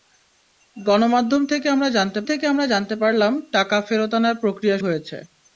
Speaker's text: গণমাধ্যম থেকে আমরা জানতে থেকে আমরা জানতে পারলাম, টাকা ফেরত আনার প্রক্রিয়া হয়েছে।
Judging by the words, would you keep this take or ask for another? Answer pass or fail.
pass